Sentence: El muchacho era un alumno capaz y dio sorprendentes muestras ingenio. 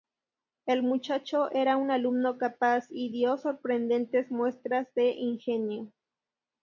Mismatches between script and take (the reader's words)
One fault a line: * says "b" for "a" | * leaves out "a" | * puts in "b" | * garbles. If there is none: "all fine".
* puts in "de"